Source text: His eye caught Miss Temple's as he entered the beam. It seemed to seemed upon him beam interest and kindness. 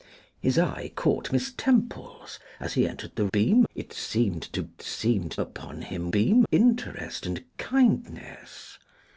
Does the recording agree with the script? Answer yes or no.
yes